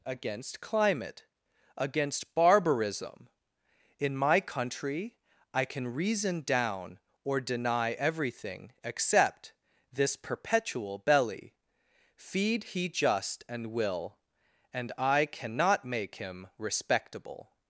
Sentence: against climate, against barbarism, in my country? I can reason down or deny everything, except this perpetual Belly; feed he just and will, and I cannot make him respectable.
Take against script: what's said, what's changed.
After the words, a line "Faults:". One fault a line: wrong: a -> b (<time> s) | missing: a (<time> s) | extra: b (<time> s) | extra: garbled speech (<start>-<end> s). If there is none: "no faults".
against climate, against barbarism, in my country? I can reason down or deny everything, except this perpetual Belly; feed he just and will, and I cannot make him respectable.
Faults:
no faults